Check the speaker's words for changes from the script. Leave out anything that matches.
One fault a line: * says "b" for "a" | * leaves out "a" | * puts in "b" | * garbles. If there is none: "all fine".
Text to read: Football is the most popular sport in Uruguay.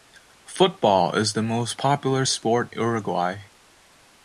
* leaves out "in"